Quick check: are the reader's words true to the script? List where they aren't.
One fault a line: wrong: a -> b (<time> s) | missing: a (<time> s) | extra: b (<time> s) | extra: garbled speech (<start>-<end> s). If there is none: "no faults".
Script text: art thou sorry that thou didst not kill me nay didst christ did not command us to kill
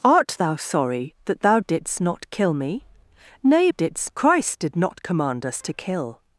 no faults